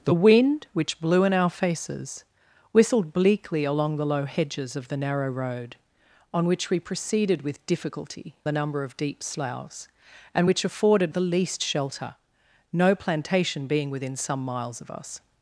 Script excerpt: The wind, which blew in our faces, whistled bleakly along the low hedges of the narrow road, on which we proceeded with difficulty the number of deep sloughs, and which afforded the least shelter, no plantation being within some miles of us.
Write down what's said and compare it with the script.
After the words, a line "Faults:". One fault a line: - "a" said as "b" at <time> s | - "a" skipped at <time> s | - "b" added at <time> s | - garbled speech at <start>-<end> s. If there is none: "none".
The wind, which blew in our faces, whistled bleakly along the low hedges of the narrow road, on which we proceeded with difficulty the number of deep sloughs, and which afforded the least shelter, no plantation being within some miles of us.
Faults:
none